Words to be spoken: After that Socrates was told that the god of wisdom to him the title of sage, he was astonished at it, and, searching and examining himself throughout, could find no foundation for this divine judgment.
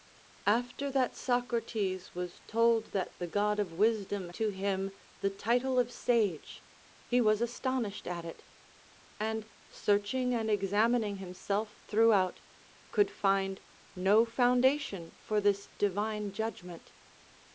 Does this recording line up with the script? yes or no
yes